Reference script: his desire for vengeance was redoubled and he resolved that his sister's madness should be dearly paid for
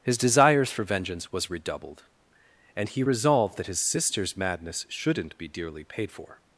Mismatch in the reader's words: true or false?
true